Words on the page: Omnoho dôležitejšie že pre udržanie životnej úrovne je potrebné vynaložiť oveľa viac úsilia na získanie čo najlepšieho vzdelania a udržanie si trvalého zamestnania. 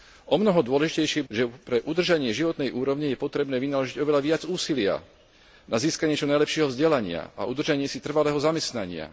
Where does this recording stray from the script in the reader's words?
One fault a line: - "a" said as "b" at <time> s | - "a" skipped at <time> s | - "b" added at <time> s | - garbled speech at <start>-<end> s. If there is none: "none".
none